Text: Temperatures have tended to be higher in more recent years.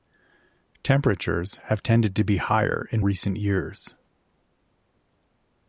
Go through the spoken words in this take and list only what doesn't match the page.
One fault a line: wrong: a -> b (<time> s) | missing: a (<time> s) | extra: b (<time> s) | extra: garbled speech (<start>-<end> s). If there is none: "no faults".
missing: more (3.0 s)